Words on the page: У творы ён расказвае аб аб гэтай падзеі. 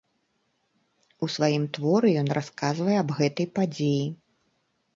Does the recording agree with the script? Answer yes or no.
no